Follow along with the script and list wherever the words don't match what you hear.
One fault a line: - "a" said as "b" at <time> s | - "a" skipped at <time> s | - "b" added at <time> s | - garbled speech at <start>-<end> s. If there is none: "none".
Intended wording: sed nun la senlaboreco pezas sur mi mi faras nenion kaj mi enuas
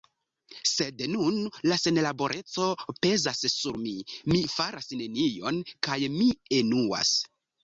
none